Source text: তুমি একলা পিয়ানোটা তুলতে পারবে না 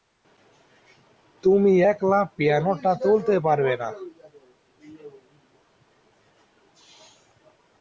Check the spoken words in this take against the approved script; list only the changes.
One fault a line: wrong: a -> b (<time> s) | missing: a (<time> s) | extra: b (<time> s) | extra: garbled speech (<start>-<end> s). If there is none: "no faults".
no faults